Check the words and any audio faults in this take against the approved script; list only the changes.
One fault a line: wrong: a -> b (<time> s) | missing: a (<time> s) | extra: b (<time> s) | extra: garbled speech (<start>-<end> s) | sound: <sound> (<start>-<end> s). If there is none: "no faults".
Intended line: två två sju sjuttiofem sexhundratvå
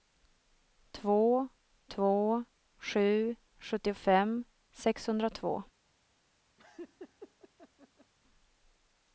sound: laugh (6.6-8.1 s)